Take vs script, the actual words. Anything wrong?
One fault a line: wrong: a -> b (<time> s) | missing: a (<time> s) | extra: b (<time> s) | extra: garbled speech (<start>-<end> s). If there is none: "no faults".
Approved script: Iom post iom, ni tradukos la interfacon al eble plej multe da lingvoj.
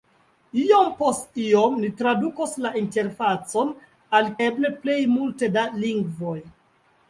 no faults